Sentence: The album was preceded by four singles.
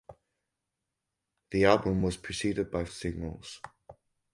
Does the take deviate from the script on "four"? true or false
true